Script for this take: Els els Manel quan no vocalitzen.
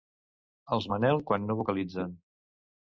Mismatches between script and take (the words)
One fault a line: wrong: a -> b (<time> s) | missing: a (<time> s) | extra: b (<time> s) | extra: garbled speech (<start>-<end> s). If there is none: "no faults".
missing: els (0.9 s)